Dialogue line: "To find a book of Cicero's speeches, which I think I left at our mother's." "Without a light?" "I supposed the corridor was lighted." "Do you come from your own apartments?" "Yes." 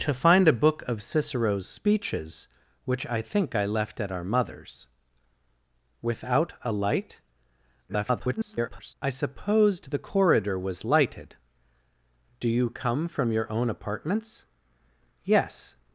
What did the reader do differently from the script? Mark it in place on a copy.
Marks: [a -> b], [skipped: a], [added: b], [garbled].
"To find a book of Cicero's speeches, which I think I left at our mother's." "Without a light?" [garbled] "I supposed the corridor was lighted." "Do you come from your own apartments?" "Yes."